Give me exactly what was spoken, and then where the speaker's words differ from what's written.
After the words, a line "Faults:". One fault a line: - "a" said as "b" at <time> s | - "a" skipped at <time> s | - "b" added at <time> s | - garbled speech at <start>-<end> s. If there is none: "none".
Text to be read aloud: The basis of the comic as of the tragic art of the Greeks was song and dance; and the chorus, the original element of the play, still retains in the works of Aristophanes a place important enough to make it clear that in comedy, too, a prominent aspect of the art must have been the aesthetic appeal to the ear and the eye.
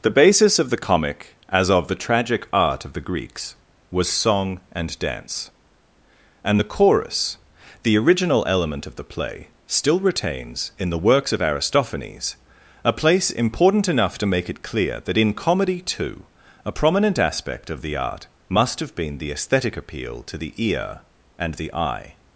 The basis of the comic as of the tragic art of the Greeks was song and dance; and the chorus, the original element of the play, still retains in the works of Aristophanes a place important enough to make it clear that in comedy, too, a prominent aspect of the art must have been the aesthetic appeal to the ear and the eye.
Faults:
none